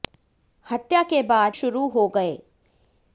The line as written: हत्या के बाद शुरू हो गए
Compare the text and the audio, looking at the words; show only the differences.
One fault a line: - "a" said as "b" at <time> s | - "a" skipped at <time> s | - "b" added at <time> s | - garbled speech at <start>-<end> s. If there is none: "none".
none